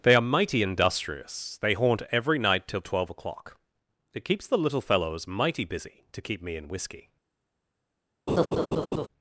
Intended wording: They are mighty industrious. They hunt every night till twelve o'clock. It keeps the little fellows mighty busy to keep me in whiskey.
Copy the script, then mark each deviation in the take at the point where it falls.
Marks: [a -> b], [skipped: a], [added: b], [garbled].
They are mighty industrious. They [hunt -> haunt] every night till twelve o'clock. It keeps the little fellows mighty busy to keep me in whiskey.